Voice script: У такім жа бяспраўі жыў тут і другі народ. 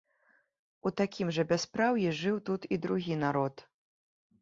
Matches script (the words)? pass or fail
pass